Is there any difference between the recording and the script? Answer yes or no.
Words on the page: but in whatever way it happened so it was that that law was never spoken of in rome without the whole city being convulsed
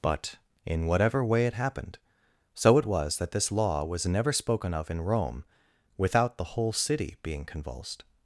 yes